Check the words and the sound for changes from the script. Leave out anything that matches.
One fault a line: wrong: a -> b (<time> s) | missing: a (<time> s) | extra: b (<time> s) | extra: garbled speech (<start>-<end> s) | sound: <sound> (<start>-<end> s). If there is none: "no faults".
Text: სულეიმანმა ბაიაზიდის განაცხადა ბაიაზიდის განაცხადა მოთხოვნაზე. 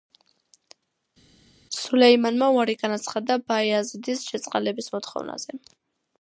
wrong: ბაიაზიდის -> უარი (2.6 s)
wrong: განაცხადა -> შეწყალების (4.3 s)